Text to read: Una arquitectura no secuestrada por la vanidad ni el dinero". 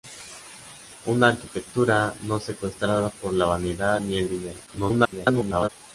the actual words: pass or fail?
fail